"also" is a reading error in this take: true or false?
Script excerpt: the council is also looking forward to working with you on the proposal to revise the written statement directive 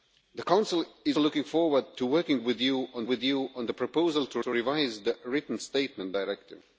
true